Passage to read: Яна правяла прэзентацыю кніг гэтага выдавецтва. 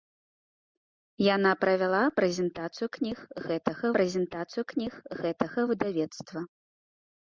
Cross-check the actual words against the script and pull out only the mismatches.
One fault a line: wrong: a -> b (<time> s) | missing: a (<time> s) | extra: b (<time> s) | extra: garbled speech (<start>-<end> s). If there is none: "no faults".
extra: прэзентацыю кніг гэтага (4.0 s)